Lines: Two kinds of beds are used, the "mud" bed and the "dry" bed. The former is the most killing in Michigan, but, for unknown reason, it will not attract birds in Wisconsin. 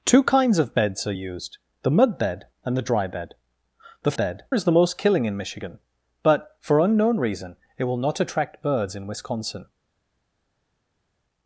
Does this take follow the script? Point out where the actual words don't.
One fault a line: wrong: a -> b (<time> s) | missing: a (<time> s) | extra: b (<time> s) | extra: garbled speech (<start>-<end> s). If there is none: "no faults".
wrong: former -> bed (4.1 s)